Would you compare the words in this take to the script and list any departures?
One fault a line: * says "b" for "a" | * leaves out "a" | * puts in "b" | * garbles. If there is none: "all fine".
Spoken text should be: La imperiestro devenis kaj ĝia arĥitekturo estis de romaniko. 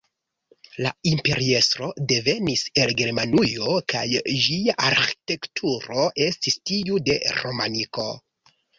* puts in "el Germanujo"
* puts in "tiu"